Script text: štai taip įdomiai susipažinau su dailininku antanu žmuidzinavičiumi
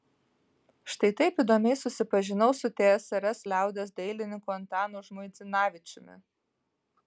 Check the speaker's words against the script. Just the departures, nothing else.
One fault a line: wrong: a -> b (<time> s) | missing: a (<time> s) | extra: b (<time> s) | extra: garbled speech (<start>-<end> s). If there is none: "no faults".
extra: tsrs liaudies (2.8 s)